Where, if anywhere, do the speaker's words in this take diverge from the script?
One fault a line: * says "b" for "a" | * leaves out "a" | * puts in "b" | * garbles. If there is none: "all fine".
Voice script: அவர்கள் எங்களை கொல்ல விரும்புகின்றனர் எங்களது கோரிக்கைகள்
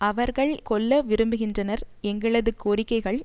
* leaves out "எங்களை"